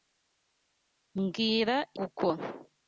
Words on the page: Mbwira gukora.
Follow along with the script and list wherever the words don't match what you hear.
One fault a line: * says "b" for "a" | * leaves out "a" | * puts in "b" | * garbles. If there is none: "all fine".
all fine